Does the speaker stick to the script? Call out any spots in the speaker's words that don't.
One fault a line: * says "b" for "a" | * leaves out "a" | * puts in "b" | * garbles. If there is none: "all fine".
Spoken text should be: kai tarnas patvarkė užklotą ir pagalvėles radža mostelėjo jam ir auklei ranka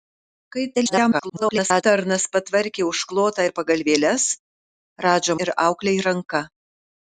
* garbles
* leaves out "mostelėjo jam"